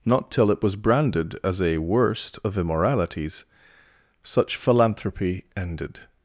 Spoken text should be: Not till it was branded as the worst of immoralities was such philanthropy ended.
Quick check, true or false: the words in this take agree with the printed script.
false